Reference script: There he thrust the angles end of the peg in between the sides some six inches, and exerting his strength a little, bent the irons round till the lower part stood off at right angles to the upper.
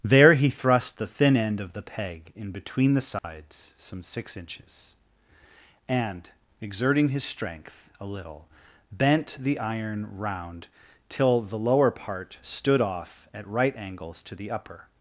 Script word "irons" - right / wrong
wrong